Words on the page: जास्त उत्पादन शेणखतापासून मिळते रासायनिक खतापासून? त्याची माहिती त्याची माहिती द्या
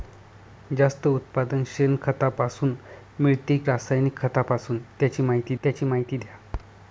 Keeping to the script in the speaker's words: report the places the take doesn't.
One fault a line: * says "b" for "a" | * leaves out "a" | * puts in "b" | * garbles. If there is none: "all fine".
all fine